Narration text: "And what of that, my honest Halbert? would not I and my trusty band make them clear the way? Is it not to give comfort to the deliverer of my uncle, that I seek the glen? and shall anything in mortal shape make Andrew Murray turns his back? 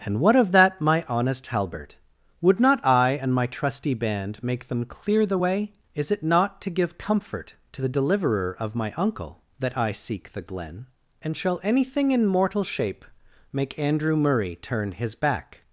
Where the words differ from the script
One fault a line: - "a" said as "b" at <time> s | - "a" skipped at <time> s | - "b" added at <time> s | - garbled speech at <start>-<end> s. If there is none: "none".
- "turns" said as "turn" at 14.5 s